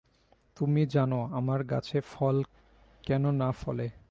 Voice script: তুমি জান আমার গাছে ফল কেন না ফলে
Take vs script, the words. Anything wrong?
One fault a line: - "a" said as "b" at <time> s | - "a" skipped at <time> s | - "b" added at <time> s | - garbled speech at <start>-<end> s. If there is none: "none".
none